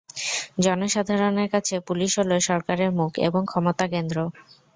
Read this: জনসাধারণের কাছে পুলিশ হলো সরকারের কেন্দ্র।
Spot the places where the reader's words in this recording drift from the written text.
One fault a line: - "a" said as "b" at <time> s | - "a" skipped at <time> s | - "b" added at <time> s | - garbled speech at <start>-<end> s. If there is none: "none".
- "মুখ এবং ক্ষমতা" added at 3.0 s